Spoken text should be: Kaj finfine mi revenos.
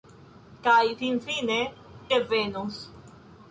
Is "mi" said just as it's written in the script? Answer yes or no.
no